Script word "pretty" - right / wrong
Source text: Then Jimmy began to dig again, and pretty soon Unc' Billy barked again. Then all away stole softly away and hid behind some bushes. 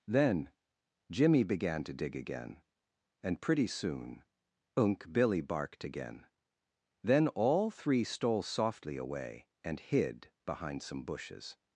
right